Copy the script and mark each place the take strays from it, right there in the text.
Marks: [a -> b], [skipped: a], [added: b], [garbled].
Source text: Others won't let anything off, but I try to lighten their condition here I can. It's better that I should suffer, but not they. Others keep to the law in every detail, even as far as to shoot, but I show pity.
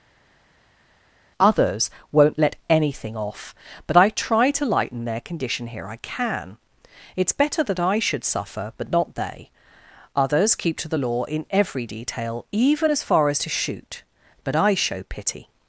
Others won't let anything off, but I try to lighten their condition here I can. It's better that I should suffer, but not they. Others keep to the law in every detail, even as far as to shoot, but I show pity.